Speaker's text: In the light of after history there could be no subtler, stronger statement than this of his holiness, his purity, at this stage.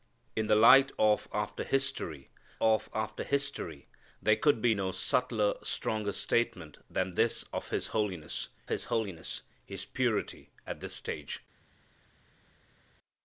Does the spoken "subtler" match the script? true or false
true